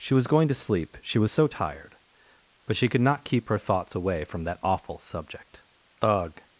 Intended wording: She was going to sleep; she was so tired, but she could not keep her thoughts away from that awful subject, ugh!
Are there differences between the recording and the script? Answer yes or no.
no